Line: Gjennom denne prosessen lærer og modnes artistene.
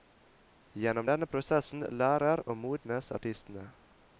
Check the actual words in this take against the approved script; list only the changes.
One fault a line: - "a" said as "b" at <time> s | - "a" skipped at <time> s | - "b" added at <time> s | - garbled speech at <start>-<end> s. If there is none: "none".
none